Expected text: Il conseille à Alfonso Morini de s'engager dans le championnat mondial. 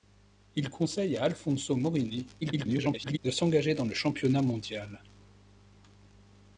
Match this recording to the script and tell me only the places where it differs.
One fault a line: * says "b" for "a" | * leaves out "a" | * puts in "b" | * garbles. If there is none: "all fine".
* garbles